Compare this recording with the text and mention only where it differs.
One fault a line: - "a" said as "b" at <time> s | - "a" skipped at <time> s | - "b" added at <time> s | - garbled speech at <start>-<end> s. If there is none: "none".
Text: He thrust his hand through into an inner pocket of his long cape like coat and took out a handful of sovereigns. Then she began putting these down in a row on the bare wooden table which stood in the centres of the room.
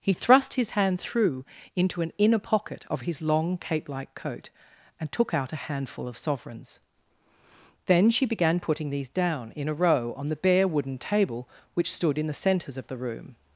none